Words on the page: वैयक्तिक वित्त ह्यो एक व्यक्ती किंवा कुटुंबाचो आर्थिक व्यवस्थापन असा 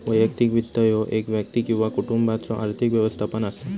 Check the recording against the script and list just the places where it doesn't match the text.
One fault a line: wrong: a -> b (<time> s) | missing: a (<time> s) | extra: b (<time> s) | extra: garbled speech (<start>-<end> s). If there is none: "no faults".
no faults